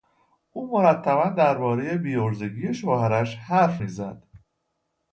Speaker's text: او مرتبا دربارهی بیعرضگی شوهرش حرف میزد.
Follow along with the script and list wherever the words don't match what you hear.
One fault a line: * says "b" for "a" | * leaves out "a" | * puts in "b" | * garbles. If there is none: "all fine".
all fine